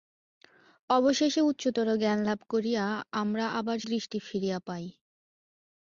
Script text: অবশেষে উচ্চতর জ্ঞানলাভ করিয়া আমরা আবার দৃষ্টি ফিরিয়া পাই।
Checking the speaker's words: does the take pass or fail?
pass